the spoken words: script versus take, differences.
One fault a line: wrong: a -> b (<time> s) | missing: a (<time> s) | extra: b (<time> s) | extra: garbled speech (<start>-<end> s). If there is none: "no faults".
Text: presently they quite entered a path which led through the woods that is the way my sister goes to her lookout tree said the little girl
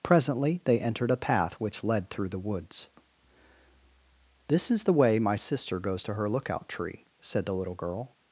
missing: quite (0.8 s)
wrong: that -> this (4.5 s)